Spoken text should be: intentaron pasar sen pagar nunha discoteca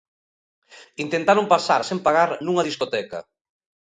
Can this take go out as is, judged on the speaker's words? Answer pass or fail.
pass